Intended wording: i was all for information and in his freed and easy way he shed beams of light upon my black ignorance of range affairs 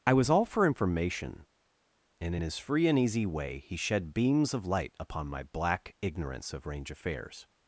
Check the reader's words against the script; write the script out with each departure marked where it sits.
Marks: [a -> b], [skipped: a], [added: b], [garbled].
i was all for information and in his [freed -> free] and easy way he shed beams of light upon my black ignorance of range affairs